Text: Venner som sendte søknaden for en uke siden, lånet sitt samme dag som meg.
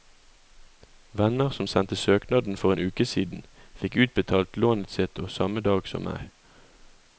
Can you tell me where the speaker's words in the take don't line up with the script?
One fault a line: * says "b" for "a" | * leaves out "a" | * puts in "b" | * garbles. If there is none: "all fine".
* puts in "fikk utbetalt"